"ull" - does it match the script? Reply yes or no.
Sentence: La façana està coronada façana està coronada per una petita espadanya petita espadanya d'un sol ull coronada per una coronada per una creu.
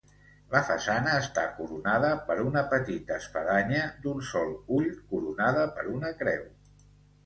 yes